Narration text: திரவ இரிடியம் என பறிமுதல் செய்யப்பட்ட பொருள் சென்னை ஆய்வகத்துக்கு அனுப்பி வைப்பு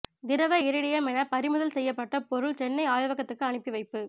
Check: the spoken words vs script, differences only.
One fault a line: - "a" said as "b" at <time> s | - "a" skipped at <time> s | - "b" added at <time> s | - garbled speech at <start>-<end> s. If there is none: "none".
none